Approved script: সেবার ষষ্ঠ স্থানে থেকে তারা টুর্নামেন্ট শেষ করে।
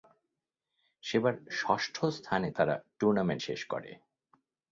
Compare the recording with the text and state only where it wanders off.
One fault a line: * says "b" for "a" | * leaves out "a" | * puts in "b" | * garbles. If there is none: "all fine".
* leaves out "থেকে"